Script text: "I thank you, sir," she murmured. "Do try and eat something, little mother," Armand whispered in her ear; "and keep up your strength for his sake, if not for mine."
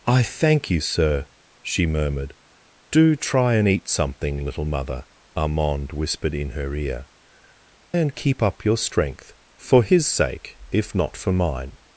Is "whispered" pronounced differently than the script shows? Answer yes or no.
no